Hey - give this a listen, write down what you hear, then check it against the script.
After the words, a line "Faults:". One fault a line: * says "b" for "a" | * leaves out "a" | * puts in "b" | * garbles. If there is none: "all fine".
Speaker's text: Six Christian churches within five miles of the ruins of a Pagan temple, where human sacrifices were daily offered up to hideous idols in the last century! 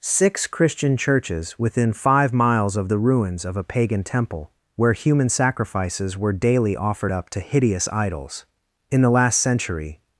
Six Christian churches within five miles of the ruins of a Pagan temple, where human sacrifices were daily offered up to hideous idols in the last century!
Faults:
all fine